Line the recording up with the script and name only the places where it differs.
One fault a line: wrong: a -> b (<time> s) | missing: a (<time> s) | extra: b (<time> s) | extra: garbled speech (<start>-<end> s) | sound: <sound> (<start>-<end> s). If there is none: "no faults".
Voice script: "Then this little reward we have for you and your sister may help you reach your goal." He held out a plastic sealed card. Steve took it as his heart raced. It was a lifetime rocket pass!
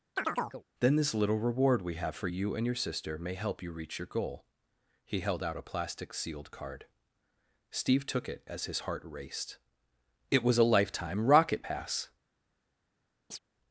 sound: chirp (0.2-0.6 s)
sound: chirp (13.3-13.4 s)